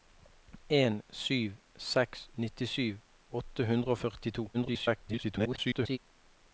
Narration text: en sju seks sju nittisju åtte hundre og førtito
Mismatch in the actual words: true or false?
true